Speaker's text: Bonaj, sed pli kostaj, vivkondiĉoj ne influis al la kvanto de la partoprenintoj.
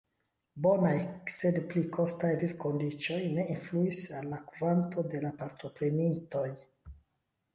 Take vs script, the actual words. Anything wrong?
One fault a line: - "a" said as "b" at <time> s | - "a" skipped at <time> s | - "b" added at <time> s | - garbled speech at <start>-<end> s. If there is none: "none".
none